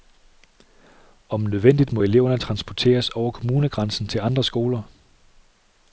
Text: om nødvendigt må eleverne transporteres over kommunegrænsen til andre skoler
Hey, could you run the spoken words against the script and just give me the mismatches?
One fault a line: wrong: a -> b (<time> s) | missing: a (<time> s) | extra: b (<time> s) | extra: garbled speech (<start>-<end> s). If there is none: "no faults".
no faults